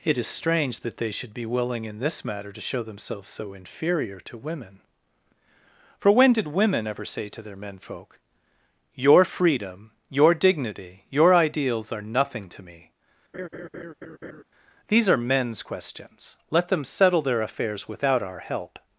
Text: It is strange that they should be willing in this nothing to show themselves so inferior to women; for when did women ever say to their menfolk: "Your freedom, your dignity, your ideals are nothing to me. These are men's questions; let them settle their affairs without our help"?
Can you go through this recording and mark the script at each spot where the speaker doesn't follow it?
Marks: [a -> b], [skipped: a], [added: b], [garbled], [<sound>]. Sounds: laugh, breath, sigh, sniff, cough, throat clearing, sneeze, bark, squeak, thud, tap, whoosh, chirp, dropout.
It is strange that they should be willing in this [nothing -> matter] to show themselves so inferior to women; for when did women ever say to their menfolk: "Your freedom, your dignity, your ideals are nothing to me. [laugh] These are men's questions; let them settle their affairs without our help"?